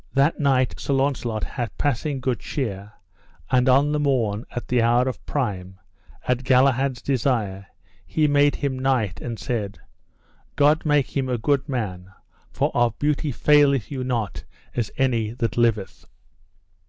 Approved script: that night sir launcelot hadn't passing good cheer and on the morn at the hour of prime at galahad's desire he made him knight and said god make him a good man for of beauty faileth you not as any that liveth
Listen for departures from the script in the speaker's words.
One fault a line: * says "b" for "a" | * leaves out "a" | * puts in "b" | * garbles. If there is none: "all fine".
* says "had" for "hadn't"